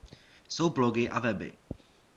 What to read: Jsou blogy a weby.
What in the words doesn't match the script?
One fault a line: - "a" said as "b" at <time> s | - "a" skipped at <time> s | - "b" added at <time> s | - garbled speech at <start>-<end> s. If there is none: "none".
none